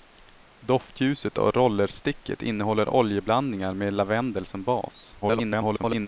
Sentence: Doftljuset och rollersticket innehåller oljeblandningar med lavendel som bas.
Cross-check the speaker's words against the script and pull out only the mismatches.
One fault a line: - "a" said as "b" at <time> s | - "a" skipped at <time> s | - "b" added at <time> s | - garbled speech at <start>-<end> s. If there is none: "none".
- garbled speech at 5.2-6.1 s